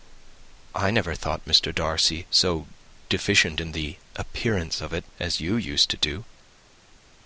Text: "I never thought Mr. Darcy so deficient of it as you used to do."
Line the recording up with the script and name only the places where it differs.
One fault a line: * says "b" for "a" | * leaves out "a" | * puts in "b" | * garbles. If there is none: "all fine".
* puts in "in the appearance"